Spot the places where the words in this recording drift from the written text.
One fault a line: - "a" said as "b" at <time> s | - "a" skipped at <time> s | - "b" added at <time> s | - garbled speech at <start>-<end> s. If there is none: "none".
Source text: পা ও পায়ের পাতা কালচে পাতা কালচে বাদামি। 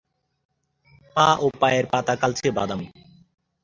- "পাতা কালচে" skipped at 2.5 s